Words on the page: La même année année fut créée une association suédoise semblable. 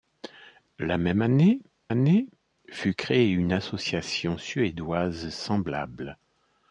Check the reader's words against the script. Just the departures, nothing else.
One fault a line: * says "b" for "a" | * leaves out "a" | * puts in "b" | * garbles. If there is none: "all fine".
all fine